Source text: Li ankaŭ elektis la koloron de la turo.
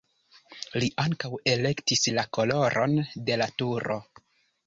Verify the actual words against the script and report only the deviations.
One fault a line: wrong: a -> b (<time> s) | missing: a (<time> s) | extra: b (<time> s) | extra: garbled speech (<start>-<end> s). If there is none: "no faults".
no faults